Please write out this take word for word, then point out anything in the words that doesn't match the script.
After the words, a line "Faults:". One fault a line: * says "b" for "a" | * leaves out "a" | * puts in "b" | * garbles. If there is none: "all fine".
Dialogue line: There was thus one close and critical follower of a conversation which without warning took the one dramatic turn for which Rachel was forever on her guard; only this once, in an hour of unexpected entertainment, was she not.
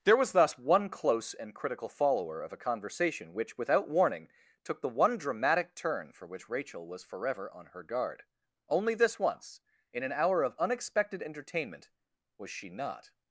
There was thus one close and critical follower of a conversation which without warning took the one dramatic turn for which Rachel was forever on her guard; only this once, in an hour of unexpected entertainment, was she not.
Faults:
all fine